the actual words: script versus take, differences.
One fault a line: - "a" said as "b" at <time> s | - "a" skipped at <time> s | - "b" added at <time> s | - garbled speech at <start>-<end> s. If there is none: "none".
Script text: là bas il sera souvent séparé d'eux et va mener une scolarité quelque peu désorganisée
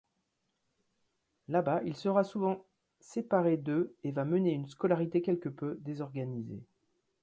none